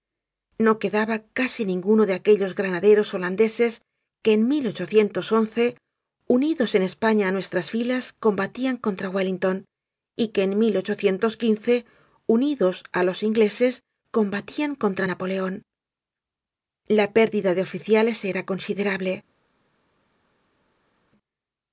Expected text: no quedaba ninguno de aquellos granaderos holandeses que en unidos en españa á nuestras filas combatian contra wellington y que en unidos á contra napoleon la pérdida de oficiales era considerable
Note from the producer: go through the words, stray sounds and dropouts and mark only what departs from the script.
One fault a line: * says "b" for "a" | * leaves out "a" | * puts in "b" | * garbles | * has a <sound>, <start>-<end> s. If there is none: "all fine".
* puts in "casi"
* puts in "los ingleses combatian"